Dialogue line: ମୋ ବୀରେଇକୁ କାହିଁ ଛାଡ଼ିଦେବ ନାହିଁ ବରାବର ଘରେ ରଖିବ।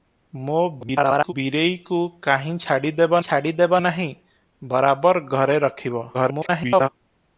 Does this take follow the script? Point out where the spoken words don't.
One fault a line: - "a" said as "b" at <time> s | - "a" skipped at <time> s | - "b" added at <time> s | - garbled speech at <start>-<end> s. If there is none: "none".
- garbled speech at 0.8-1.3 s
- "ଛାଡ଼ିଦେବ" added at 3.3 s
- garbled speech at 6.1-6.9 s